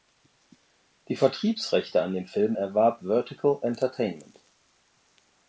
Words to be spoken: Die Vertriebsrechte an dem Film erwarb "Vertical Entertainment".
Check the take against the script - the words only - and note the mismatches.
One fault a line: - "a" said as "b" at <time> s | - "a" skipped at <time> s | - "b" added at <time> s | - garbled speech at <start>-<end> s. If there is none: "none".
none